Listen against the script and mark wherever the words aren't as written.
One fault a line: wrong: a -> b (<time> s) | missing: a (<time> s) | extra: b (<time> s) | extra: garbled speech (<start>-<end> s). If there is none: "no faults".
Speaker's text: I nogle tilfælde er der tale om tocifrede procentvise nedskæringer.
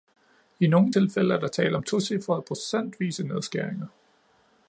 no faults